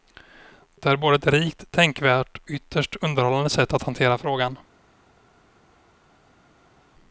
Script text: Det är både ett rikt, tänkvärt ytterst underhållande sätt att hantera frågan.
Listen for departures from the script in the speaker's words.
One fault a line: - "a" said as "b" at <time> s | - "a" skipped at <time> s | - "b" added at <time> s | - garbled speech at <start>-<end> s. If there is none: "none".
none